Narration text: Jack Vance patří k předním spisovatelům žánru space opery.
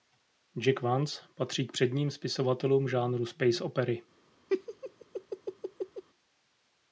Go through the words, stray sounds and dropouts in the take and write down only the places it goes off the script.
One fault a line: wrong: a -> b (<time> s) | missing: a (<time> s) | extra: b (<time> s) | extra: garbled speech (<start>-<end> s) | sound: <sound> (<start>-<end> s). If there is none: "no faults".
sound: laugh (4.5-6.0 s)